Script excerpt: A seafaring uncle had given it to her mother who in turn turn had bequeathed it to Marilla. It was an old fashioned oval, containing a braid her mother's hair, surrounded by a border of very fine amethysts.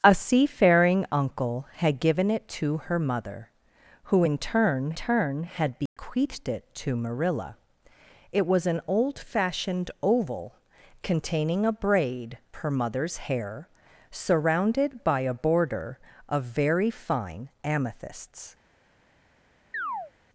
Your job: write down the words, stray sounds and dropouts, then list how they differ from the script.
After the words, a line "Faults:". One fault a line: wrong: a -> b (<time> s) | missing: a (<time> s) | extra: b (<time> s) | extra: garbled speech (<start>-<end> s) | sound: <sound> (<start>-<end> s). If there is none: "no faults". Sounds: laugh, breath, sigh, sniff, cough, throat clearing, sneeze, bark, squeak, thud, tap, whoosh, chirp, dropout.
A seafaring uncle had given it to her mother who in turn turn had bequeathed it to Marilla. It was an old fashioned oval, containing a braid her mother's hair, surrounded by a border of very fine amethysts.
Faults:
sound: dropout (5.9-6.0 s)
sound: chirp (19.7-20.1 s)